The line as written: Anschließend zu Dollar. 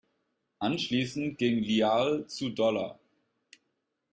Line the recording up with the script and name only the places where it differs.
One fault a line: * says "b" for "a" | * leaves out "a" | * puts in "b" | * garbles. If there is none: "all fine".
* puts in "ging Lyall"